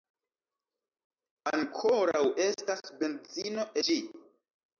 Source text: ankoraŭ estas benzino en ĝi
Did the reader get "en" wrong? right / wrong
wrong